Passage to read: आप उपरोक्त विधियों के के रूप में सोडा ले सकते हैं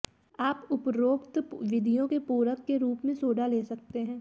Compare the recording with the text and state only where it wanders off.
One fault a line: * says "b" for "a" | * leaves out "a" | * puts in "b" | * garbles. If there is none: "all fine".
* puts in "पूरक"